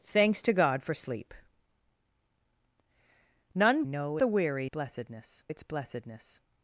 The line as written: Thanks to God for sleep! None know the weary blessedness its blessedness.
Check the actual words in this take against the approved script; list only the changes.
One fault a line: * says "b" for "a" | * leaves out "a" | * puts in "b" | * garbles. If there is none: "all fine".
all fine